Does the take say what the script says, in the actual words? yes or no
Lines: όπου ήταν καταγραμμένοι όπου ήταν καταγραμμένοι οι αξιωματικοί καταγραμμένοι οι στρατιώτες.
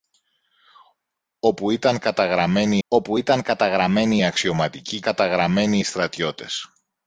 yes